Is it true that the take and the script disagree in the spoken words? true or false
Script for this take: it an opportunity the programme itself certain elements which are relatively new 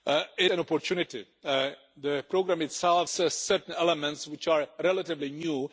false